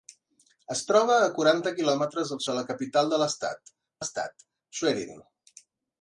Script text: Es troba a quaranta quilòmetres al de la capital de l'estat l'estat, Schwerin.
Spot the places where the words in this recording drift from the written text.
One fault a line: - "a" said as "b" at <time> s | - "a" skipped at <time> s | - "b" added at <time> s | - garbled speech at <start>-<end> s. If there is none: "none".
none